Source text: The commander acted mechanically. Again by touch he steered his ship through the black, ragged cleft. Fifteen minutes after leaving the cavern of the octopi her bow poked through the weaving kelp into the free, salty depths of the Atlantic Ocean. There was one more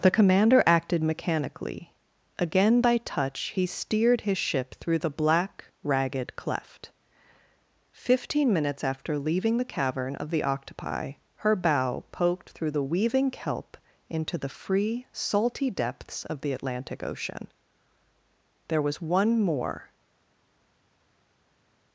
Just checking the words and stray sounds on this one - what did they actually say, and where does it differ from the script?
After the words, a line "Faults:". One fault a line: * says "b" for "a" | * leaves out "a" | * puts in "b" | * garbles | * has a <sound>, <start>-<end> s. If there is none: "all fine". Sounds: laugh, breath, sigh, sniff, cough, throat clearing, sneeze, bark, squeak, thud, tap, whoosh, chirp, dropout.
The commander acted mechanically. Again by touch he steered his ship through the black, ragged cleft. Fifteen minutes after leaving the cavern of the octopi her bow poked through the weaving kelp into the free, salty depths of the Atlantic Ocean. There was one more
Faults:
all fine